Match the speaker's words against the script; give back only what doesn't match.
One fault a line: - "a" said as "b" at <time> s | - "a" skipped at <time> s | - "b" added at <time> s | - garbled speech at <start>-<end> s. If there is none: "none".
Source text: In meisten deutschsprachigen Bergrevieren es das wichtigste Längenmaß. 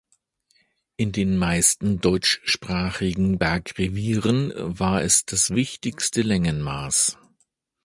- "den" added at 1.1 s
- "war" added at 4.5 s